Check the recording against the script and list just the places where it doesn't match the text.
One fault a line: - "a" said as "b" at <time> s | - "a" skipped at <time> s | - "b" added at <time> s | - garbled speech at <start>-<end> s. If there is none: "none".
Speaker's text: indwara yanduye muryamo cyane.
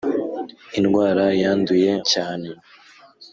- "muryamo" skipped at 1.9 s